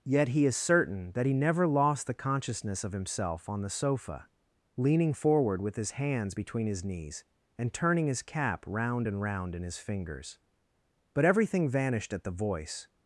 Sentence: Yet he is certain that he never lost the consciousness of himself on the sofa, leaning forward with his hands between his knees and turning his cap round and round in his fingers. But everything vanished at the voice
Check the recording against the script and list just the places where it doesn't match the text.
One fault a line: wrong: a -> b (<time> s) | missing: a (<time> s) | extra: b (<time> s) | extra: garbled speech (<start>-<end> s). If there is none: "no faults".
no faults